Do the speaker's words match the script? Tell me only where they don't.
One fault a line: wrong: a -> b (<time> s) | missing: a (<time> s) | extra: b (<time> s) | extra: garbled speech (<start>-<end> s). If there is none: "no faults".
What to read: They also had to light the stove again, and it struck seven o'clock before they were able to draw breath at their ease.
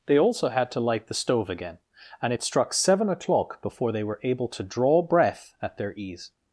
no faults